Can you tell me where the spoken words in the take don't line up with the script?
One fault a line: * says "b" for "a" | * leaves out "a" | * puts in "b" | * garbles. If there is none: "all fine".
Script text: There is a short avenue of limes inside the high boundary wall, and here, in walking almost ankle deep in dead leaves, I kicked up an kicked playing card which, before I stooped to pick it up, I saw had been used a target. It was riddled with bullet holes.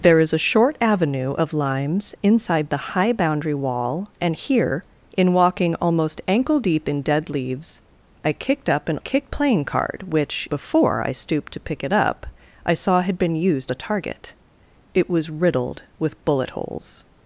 all fine